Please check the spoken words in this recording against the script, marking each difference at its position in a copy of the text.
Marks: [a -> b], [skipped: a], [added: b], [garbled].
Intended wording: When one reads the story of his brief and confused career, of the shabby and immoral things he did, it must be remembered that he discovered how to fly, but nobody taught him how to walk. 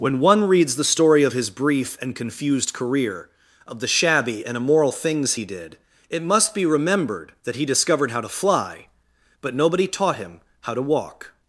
When one reads the story of his brief and confused career, of the shabby and immoral things he did, it must be remembered that he discovered how to fly, but nobody taught him how to walk.